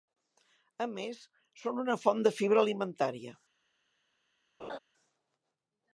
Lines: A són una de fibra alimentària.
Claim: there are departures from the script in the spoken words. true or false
true